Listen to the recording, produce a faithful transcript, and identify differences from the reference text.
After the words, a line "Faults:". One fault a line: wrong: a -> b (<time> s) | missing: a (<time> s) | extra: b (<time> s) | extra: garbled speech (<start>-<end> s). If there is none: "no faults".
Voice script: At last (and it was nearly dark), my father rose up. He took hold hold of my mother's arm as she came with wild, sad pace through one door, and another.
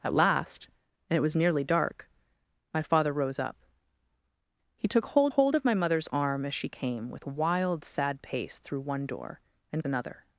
At last (and it was nearly dark), my father rose up. He took hold hold of my mother's arm as she came with wild, sad pace through one door, and another.
Faults:
no faults